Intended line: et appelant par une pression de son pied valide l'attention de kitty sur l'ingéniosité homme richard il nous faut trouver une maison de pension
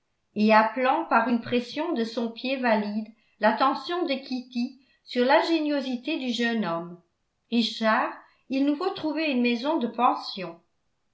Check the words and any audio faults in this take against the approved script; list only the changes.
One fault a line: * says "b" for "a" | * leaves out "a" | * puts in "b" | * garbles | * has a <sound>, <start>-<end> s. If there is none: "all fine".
* puts in "du jeune"